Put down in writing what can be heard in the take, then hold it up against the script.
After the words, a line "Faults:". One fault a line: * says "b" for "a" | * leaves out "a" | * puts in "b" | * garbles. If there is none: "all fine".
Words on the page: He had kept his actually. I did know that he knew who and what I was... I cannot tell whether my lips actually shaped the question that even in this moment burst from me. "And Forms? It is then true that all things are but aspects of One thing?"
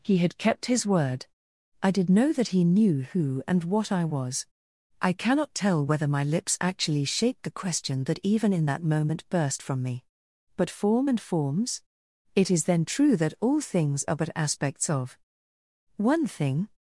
He had kept his word. I did know that he knew who and what I was... I cannot tell whether my lips actually shaped the question that even in that moment burst from me. "But Form and Forms? It is then true that all things are but aspects of One thing?"
Faults:
* says "word" for "actually"
* says "that" for "this"
* puts in "But Form"